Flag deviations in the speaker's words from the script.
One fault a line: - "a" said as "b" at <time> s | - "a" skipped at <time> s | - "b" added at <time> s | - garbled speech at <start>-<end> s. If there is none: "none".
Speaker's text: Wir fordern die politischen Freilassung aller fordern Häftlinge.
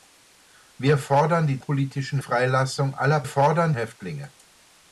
none